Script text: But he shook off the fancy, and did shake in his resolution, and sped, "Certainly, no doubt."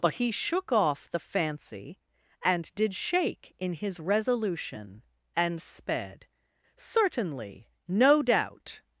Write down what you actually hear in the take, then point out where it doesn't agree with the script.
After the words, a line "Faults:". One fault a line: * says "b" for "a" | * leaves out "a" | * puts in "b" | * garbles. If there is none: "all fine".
But he shook off the fancy, and did shake in his resolution, and sped, "Certainly, no doubt."
Faults:
all fine